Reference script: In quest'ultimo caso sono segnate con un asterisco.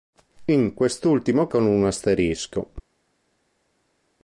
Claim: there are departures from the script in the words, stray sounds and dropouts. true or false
true